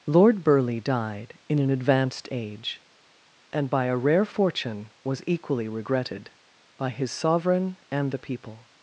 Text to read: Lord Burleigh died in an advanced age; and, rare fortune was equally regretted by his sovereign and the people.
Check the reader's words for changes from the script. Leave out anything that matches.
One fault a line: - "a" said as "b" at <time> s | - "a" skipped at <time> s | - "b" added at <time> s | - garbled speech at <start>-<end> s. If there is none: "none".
- "by a" added at 3.7 s